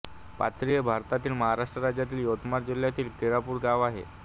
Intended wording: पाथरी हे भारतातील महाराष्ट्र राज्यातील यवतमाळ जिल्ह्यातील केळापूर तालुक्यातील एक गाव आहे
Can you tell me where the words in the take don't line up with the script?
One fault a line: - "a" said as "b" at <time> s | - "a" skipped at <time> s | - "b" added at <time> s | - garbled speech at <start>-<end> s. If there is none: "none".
- "तालुक्यातील एक" skipped at 3.6 s